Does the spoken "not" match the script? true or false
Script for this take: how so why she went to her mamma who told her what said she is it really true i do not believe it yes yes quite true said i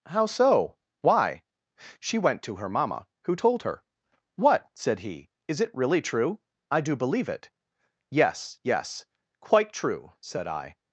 false